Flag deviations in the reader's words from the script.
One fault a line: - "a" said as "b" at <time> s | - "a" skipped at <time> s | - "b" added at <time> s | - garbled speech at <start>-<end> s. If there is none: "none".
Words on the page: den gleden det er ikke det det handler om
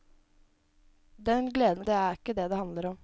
none